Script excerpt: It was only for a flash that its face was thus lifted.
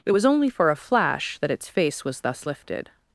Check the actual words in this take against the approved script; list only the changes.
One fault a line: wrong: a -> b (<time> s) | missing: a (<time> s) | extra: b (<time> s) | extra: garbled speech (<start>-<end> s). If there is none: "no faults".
no faults